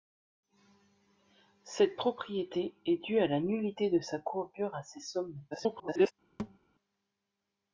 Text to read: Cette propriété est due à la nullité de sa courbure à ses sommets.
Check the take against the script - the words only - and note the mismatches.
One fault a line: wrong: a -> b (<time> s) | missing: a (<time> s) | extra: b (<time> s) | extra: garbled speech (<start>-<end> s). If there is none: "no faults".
extra: garbled speech (5.5-6.1 s)